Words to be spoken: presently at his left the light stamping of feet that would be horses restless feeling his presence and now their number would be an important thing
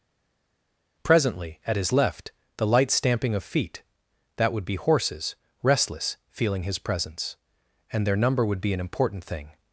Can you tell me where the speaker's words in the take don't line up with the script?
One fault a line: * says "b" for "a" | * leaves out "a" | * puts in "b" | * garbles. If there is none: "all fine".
* leaves out "now"